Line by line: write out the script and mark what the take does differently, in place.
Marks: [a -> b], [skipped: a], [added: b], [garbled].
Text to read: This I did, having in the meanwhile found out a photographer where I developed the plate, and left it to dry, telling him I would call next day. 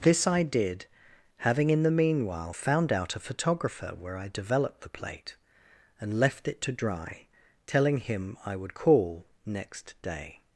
This I did, having in the meanwhile found out a photographer where I developed the plate, and left it to dry, telling him I would call next day.